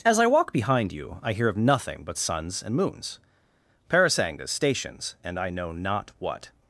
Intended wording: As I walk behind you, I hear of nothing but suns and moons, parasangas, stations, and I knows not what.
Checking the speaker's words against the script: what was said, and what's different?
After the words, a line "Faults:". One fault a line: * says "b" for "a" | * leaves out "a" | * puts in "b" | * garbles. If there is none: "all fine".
As I walk behind you, I hear of nothing but suns and moons, parasangas, stations, and I know not what.
Faults:
* says "know" for "knows"